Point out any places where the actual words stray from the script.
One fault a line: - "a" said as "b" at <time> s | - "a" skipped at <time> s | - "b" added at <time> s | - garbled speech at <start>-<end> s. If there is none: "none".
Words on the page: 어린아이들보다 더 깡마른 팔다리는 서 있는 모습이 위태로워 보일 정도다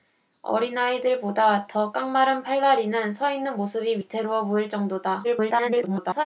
- garbled speech at 5.2-6.3 s